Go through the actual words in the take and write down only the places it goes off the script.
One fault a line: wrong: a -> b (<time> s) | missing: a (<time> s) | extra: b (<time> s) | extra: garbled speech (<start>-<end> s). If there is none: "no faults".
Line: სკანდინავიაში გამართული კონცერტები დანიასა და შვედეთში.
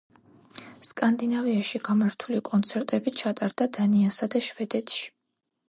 extra: ჩატარდა (3.2 s)